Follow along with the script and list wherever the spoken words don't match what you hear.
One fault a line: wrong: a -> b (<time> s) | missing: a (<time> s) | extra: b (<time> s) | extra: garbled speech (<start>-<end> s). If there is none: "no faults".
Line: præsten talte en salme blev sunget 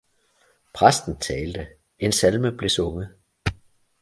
no faults